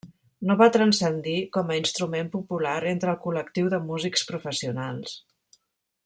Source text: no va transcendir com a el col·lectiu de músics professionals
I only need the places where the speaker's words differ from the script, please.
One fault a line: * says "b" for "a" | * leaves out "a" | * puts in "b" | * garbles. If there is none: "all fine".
* puts in "instrument popular entre"